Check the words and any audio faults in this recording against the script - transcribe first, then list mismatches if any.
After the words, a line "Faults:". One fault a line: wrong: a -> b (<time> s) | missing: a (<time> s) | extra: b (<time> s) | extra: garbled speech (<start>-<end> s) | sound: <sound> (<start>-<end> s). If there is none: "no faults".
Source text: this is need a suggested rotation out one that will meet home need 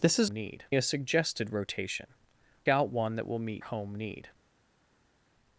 this is need a suggested rotation out one that will meet home need
Faults:
no faults